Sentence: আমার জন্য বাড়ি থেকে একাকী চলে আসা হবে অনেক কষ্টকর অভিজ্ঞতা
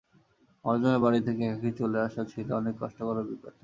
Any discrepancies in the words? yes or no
yes